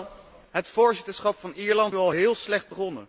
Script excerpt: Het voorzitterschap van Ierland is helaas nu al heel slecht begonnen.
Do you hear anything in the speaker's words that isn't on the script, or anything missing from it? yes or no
yes